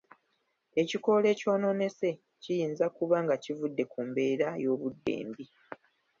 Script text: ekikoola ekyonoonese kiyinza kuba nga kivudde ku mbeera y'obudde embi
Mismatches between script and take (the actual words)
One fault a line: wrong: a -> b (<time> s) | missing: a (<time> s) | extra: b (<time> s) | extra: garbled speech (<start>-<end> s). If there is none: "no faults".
no faults